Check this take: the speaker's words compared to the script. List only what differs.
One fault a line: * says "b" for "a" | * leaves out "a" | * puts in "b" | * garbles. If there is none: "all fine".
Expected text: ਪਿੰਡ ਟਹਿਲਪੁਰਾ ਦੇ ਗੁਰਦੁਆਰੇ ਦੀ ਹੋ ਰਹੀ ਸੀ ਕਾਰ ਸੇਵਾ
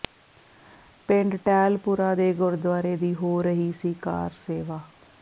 all fine